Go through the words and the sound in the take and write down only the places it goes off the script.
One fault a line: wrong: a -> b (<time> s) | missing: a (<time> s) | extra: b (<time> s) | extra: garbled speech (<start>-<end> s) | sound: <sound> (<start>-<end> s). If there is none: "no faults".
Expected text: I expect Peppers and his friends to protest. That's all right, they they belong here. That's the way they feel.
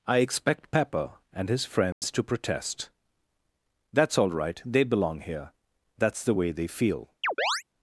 wrong: Peppers -> Pepper (0.7 s)
sound: dropout (1.9-2.0 s)
missing: they (4.8 s)
sound: chirp (7.2-7.6 s)